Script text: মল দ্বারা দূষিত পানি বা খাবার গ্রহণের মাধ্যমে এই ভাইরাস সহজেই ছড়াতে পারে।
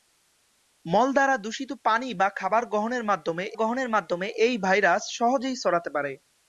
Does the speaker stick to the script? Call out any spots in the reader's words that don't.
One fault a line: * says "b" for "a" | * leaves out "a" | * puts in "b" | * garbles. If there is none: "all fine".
* puts in "গ্রহণের মাধ্যমে"